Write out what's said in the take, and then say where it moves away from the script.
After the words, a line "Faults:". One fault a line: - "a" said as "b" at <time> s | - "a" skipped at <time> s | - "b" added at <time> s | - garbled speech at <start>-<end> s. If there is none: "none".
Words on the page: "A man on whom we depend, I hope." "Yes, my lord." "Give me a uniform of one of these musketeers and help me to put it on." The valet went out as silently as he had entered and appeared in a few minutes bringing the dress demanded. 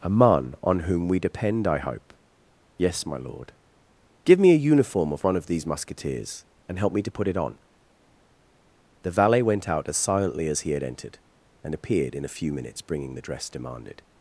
"A man on whom we depend, I hope." "Yes, my lord." "Give me a uniform of one of these musketeers and help me to put it on." The valet went out as silently as he had entered and appeared in a few minutes bringing the dress demanded.
Faults:
none